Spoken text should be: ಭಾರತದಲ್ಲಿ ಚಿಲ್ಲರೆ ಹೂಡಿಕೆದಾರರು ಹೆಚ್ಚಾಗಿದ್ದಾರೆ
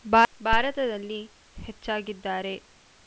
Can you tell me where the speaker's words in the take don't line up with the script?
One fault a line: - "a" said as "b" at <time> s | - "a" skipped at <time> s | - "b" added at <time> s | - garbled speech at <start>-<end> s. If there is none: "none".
- "ಚಿಲ್ಲರೆ ಹೂಡಿಕೆದಾರರು" skipped at 1.2 s